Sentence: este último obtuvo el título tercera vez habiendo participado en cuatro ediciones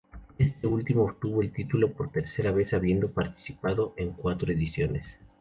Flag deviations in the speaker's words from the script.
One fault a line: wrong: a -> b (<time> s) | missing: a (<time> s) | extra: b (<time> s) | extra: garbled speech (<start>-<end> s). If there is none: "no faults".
extra: por (1.9 s)